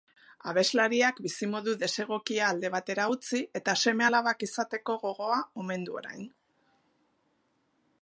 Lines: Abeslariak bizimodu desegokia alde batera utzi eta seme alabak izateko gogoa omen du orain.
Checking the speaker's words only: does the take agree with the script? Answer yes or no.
yes